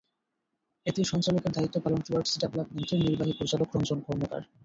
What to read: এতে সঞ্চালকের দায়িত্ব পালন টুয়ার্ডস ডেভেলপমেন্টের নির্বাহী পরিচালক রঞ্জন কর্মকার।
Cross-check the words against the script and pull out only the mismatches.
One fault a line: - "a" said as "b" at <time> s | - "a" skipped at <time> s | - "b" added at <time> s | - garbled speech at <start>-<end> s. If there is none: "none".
none